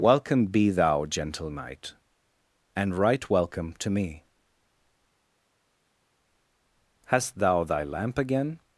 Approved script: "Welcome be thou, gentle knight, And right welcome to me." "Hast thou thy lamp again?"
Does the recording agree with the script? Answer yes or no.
yes